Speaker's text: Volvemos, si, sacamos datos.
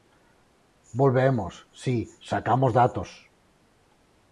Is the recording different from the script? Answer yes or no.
no